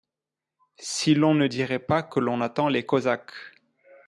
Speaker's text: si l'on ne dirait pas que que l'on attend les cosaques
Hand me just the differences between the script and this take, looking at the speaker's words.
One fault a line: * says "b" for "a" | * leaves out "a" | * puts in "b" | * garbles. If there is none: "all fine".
* leaves out "que"